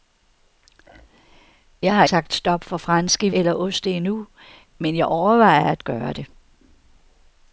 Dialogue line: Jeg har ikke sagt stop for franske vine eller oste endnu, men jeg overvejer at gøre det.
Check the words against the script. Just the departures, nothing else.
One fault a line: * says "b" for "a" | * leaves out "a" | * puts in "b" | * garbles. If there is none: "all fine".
* leaves out "ikke"
* leaves out "vine"